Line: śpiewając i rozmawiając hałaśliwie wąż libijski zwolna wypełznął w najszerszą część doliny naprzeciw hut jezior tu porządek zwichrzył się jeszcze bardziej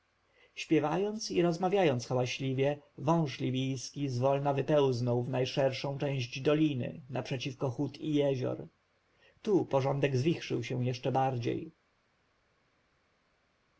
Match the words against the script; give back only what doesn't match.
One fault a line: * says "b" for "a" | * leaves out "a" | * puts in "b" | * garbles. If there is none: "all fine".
* puts in "i"